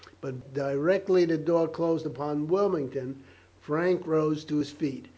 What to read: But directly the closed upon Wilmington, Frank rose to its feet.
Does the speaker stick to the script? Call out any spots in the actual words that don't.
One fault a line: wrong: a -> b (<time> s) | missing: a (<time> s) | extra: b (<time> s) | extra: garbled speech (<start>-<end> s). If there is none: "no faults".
extra: door (1.4 s)
wrong: its -> his (4.6 s)